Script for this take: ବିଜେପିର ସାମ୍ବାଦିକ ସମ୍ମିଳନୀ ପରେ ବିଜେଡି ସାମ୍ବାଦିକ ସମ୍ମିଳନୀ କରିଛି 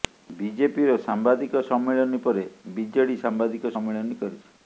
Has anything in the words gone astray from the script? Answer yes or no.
no